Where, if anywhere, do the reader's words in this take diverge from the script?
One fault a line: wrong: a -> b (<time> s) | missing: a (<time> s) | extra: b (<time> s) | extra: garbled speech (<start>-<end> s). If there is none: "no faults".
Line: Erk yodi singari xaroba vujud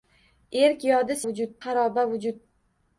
wrong: singari -> vujud (1.3 s)